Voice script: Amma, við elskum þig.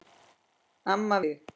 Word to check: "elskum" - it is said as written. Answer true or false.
false